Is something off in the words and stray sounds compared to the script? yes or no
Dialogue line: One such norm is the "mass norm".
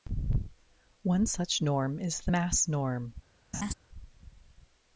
yes